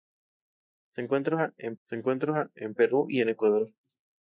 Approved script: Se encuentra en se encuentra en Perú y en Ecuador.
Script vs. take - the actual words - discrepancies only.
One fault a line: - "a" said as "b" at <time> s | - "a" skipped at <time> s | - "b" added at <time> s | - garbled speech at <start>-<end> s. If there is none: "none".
none